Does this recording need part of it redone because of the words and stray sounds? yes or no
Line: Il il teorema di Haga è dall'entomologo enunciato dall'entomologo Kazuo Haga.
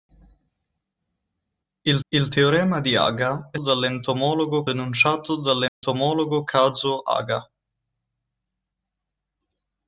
yes